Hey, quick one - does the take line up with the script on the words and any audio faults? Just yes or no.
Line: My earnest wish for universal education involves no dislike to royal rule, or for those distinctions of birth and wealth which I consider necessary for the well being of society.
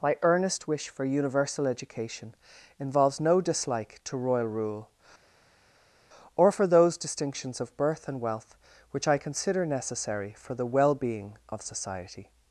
yes